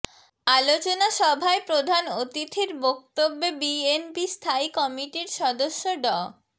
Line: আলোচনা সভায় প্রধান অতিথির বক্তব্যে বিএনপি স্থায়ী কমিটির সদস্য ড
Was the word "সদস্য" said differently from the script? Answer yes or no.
no